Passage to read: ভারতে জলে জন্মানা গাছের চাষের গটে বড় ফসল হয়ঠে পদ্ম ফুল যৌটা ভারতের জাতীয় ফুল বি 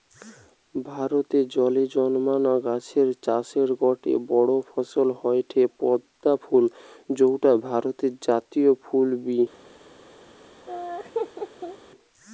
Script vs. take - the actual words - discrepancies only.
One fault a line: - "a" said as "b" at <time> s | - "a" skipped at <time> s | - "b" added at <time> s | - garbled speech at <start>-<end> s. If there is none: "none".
none